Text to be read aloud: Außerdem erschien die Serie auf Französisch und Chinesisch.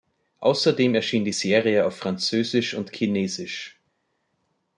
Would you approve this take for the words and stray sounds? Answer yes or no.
yes